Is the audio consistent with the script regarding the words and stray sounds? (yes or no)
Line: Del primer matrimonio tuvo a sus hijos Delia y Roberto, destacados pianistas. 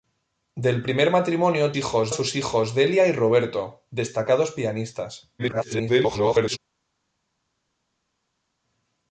no